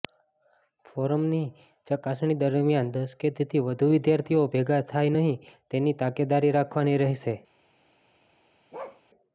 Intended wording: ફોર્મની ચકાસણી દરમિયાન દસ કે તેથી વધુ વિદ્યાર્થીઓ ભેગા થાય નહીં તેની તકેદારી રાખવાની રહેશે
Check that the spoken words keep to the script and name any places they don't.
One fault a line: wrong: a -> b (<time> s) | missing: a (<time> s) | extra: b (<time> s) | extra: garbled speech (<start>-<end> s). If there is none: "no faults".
no faults